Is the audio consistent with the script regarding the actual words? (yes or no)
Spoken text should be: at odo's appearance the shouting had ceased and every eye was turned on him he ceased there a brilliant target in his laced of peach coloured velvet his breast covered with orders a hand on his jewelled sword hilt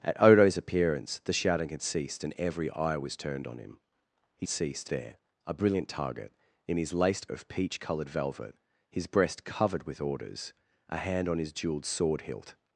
yes